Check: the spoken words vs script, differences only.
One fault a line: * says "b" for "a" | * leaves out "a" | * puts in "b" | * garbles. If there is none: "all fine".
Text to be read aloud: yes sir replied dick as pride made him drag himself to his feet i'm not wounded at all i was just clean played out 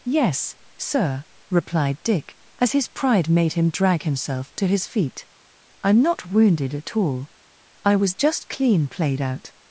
* puts in "his"